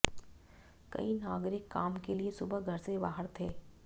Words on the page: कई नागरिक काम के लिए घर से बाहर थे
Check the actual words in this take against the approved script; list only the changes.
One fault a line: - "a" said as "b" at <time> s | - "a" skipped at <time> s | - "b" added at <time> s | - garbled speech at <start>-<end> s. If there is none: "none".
- "सुबह" added at 2.3 s